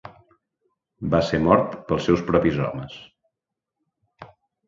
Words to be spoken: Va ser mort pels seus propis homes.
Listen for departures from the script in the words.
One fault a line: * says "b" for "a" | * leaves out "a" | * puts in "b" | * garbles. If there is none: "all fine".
all fine